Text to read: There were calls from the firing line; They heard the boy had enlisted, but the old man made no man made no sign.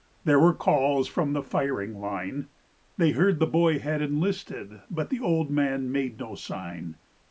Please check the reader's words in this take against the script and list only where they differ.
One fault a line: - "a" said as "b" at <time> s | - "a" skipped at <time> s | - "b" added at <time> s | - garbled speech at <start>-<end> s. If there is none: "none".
- "man made no" skipped at 6.3 s